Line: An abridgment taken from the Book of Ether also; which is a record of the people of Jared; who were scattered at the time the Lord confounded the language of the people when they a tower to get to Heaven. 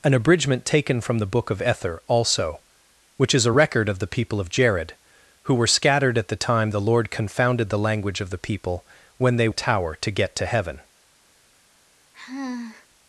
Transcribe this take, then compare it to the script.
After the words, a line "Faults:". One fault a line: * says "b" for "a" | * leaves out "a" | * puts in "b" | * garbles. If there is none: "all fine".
An abridgment taken from the Book of Ether also; which is a record of the people of Jared; who were scattered at the time the Lord confounded the language of the people when they a tower to get to Heaven.
Faults:
all fine